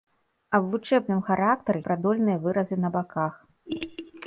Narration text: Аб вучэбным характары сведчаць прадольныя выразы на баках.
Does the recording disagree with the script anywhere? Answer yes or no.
yes